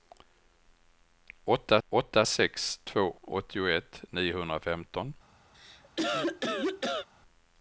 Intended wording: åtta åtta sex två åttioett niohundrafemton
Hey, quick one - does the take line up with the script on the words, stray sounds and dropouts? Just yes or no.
no